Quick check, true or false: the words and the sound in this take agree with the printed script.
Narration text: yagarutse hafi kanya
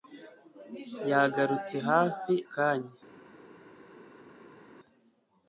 true